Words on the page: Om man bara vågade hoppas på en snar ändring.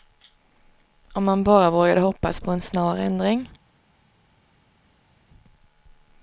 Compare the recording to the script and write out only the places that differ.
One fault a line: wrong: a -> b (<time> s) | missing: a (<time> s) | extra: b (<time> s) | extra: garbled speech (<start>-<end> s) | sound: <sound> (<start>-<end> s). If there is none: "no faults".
no faults